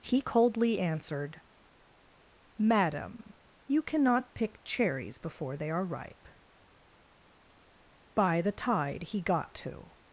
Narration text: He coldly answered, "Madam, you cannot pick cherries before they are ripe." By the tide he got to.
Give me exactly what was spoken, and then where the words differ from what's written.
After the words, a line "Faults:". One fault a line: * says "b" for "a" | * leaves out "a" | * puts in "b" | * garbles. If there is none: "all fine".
He coldly answered, "Madam, you cannot pick cherries before they are ripe." By the tide he got to.
Faults:
all fine